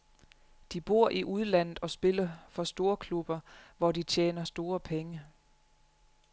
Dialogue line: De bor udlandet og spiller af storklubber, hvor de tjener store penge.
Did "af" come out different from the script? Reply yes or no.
yes